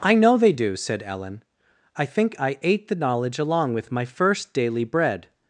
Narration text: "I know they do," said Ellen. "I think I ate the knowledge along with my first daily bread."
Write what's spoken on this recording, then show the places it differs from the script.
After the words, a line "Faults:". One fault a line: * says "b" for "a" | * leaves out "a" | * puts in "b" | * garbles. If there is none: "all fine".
"I know they do," said Ellen. "I think I ate the knowledge along with my first daily bread."
Faults:
all fine